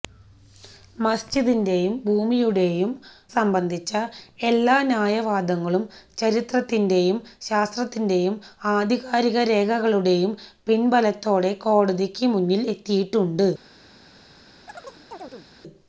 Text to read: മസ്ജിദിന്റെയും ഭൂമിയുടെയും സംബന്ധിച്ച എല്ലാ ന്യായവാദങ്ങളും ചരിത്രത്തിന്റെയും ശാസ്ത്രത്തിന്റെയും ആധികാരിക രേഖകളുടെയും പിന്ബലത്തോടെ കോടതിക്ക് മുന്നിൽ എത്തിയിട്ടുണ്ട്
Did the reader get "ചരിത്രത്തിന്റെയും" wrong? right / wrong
right